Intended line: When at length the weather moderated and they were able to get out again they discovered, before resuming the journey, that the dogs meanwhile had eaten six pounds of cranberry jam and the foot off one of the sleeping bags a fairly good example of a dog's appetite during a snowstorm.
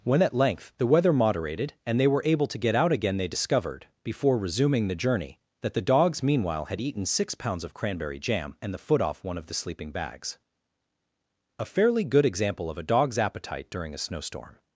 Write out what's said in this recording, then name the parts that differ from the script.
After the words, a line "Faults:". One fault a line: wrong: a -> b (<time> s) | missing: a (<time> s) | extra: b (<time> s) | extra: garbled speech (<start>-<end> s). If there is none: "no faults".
When at length the weather moderated and they were able to get out again they discovered, before resuming the journey, that the dogs meanwhile had eaten six pounds of cranberry jam and the foot off one of the sleeping bags a fairly good example of a dog's appetite during a snowstorm.
Faults:
no faults